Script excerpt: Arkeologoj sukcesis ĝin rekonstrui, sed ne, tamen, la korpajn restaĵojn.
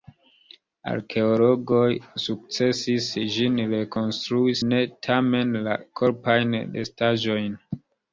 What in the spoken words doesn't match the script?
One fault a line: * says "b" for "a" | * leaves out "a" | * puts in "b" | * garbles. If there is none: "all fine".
* leaves out "sed"